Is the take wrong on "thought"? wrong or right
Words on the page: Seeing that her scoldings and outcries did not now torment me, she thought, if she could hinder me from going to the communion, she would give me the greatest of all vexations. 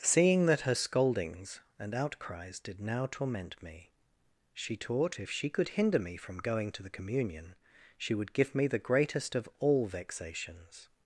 wrong